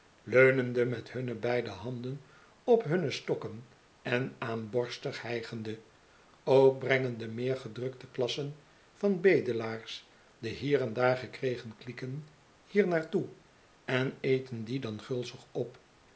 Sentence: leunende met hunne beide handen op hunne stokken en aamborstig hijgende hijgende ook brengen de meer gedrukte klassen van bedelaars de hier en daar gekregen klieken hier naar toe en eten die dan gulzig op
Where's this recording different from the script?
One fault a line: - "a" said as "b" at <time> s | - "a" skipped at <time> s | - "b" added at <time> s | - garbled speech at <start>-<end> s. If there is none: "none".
- "hijgende" skipped at 5.8 s